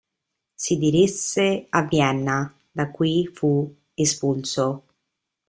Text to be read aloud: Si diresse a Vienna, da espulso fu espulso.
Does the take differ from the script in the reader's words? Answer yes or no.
yes